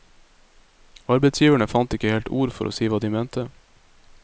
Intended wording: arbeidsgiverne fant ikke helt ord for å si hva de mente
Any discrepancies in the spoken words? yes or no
no